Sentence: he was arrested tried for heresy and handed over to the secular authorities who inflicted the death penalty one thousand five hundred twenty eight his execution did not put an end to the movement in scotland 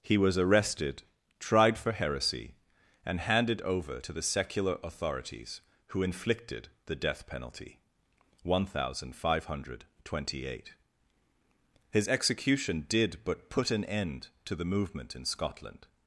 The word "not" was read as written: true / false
false